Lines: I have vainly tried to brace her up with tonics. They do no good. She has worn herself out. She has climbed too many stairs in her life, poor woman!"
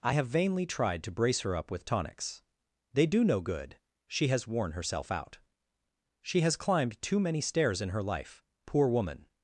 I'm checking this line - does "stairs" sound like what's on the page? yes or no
yes